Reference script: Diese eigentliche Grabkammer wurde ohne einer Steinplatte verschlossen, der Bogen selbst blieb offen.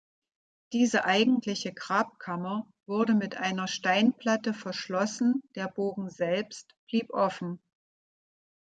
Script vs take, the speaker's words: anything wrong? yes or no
yes